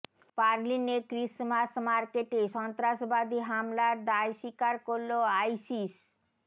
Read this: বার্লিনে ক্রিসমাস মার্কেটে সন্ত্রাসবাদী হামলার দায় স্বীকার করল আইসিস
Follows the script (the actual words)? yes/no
yes